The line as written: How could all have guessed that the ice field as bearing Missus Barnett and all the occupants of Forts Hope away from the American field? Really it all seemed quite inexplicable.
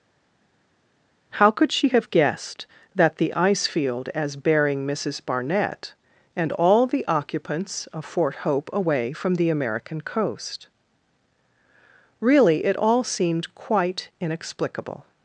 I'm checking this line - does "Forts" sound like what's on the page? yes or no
no